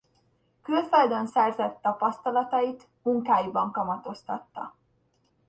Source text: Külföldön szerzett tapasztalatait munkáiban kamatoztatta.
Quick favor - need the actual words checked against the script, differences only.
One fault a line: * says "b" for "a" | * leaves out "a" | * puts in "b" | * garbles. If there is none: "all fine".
all fine